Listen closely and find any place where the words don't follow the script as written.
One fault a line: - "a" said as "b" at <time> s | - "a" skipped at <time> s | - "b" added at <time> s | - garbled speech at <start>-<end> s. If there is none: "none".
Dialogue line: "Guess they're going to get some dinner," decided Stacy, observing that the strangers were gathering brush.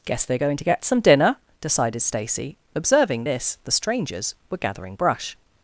- "that" said as "this" at 3.2 s